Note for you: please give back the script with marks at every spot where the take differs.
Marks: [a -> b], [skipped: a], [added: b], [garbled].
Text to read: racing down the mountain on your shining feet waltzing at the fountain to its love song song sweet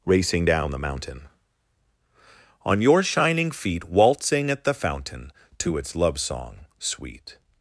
racing down the mountain on your shining feet waltzing at the fountain to its love song [skipped: song] sweet